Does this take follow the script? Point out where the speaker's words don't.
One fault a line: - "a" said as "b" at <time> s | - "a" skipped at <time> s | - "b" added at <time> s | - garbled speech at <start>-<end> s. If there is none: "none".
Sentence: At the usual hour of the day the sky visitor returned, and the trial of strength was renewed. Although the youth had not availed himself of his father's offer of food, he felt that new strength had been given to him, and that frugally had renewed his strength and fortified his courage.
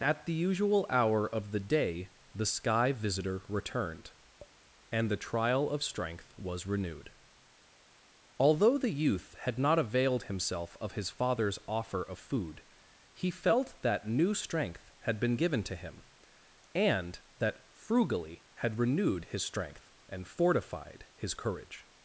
none